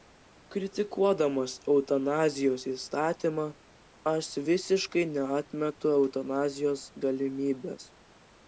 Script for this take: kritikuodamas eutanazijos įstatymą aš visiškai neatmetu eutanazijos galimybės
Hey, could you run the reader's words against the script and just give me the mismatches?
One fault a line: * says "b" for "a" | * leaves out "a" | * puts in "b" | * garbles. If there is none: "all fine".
all fine